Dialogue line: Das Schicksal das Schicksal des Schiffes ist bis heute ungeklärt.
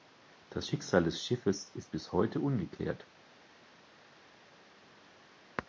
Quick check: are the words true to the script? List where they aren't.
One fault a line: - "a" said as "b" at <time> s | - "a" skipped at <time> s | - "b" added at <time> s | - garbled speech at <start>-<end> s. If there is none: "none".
- "das Schicksal" skipped at 1.0 s